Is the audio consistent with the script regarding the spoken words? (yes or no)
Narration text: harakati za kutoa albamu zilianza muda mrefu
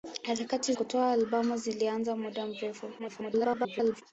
no